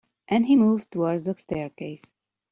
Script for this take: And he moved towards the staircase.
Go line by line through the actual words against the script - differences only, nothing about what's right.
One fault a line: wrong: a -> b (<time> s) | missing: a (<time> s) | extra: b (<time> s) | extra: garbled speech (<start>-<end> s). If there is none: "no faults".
no faults